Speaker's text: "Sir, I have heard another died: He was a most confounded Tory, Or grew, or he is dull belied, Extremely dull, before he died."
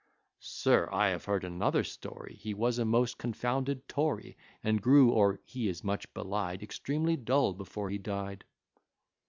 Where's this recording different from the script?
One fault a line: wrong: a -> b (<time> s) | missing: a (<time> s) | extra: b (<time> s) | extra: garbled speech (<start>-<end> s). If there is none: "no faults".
wrong: died -> story (1.8 s)
wrong: Or -> And (4.6 s)
wrong: dull -> much (5.8 s)